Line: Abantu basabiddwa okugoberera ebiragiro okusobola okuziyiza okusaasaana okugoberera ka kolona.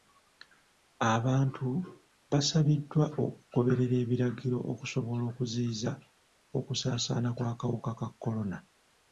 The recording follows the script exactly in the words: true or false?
false